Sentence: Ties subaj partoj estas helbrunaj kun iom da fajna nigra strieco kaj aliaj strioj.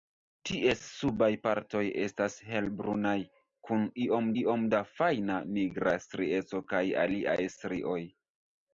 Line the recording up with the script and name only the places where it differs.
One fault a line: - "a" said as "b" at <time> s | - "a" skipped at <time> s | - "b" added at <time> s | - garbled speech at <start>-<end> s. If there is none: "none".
- "iom" added at 4.4 s